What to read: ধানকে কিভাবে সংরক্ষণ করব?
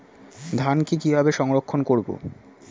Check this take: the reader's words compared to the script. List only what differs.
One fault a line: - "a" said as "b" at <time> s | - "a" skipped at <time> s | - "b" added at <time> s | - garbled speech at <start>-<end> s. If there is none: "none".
none